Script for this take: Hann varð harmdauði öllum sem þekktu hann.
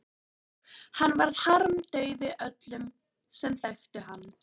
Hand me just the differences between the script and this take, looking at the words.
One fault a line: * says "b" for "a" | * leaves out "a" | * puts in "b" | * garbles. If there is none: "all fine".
all fine